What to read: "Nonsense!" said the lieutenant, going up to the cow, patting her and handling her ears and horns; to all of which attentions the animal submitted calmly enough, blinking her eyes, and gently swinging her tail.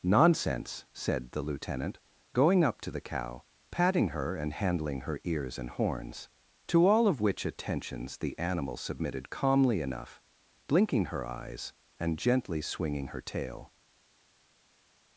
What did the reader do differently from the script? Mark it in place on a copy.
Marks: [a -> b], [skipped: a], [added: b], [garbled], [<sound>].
"Nonsense!" said the lieutenant, going up to the cow, patting her and handling her ears and horns; to all of which attentions the animal submitted calmly enough, blinking her eyes, and gently swinging her tail.